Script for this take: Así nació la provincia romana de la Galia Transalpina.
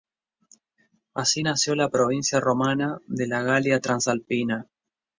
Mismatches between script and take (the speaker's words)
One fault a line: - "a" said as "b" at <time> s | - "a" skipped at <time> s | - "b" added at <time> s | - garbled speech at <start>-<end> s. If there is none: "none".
none